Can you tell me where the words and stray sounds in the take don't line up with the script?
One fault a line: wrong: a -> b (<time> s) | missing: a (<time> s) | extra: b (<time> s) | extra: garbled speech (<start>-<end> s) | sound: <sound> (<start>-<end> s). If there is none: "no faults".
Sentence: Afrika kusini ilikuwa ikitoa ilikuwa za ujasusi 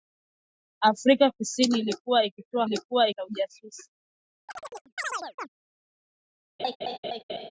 sound: chirp (4.5-5.5 s)
sound: laugh (6.6-7.5 s)